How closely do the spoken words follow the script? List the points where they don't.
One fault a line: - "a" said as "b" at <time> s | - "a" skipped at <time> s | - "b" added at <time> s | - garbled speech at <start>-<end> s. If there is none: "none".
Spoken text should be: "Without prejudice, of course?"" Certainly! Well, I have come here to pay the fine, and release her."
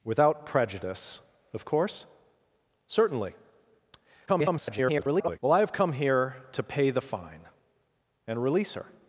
- garbled speech at 4.3-5.4 s